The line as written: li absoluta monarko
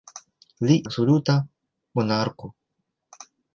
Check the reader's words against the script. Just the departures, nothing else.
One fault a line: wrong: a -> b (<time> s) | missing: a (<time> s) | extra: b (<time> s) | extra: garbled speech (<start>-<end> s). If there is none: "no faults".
no faults